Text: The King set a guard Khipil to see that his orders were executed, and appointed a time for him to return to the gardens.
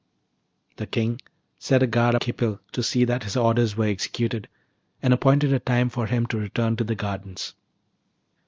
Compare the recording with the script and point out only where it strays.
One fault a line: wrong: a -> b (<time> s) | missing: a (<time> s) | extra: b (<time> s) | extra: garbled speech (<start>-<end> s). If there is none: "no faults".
no faults